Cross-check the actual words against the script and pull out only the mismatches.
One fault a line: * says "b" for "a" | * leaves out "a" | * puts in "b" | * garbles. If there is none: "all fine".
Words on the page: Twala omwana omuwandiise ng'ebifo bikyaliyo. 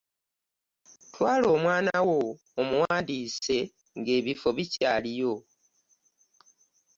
* puts in "wo"